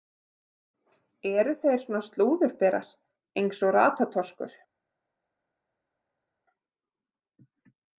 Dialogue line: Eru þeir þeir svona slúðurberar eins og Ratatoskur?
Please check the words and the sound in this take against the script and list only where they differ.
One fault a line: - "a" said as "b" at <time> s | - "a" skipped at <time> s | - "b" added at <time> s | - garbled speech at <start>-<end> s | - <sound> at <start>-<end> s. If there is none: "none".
- "þeir" skipped at 1.8 s